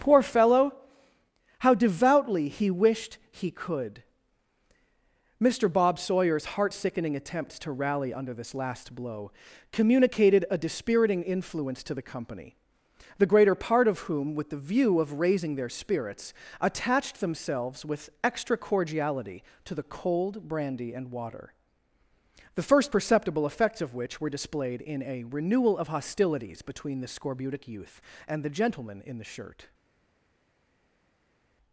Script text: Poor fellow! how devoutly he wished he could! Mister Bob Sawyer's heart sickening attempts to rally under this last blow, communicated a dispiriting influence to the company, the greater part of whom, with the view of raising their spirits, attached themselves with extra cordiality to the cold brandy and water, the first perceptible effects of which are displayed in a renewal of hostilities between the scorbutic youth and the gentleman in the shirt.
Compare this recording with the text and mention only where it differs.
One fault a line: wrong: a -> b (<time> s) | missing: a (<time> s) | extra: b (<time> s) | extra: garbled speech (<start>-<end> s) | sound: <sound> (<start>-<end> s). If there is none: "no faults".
wrong: are -> were (24.2 s)